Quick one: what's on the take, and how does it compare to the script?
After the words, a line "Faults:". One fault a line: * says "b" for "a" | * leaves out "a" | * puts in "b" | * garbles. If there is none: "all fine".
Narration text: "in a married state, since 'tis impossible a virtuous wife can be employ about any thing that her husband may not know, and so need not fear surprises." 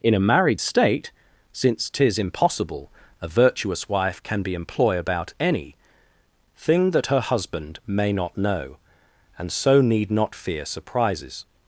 "in a married state, since 'tis impossible a virtuous wife can be employ about any thing that her husband may not know, and so need not fear surprises."
Faults:
all fine